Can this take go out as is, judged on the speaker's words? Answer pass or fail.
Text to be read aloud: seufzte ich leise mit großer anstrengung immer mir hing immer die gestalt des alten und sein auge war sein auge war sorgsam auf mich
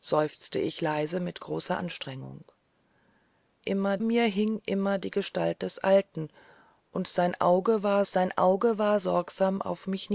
pass